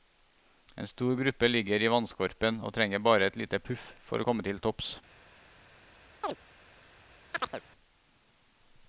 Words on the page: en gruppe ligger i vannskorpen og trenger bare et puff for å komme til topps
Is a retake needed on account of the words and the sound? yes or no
yes